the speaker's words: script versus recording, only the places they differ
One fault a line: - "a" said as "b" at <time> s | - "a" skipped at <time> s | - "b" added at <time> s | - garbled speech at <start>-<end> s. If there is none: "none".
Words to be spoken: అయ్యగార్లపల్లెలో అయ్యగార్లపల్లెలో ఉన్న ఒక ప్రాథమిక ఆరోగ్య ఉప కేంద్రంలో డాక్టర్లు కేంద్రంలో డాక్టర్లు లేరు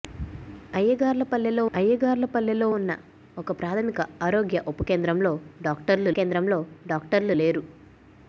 none